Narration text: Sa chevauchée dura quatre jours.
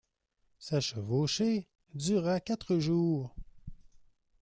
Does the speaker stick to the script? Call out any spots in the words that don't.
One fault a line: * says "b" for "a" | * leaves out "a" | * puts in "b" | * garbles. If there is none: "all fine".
all fine